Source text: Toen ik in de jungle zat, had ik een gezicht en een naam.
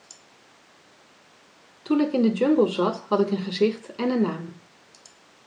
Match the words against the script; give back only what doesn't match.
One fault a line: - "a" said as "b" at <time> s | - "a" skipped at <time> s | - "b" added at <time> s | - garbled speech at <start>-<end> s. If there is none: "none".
none